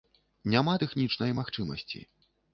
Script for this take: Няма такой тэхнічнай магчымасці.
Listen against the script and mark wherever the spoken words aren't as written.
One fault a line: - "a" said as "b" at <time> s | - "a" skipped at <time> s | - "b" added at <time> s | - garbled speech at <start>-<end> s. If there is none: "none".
- "такой" skipped at 0.7 s